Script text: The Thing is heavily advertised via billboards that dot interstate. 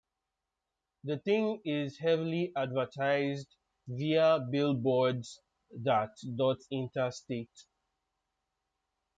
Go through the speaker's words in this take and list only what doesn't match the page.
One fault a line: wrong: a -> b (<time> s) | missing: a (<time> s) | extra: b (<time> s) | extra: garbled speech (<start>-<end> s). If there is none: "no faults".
no faults